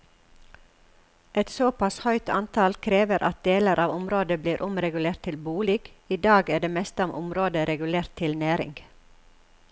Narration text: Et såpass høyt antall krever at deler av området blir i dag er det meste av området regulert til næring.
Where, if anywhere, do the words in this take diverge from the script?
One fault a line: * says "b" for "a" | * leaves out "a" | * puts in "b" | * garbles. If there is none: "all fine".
* puts in "omregulert til bolig"